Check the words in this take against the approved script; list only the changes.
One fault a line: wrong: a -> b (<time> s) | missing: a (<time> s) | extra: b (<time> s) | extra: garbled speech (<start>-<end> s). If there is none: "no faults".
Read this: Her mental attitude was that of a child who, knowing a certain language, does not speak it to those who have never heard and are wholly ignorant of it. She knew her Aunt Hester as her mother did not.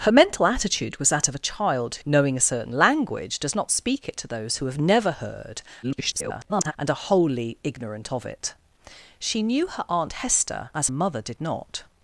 missing: who (2.0 s)
extra: garbled speech (5.8-6.7 s)
missing: her (10.9 s)